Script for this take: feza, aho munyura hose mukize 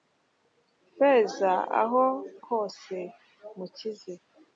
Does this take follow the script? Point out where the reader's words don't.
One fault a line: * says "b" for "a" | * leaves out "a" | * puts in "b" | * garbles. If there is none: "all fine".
* leaves out "munyura"